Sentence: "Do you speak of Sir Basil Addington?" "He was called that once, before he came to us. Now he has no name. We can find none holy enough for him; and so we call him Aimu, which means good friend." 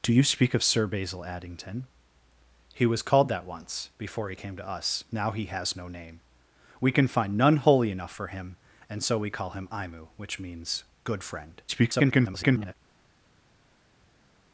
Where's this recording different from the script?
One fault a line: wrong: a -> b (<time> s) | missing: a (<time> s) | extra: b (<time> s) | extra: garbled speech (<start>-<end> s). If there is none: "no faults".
extra: garbled speech (11.7-12.7 s)